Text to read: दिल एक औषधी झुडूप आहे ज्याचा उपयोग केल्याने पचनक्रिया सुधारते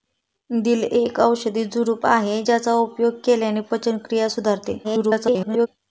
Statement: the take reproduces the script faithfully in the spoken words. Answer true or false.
false